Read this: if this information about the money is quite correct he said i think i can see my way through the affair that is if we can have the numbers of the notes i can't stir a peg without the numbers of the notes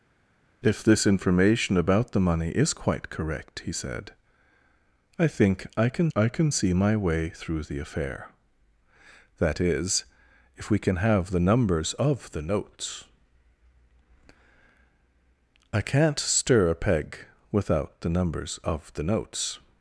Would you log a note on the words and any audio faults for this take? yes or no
yes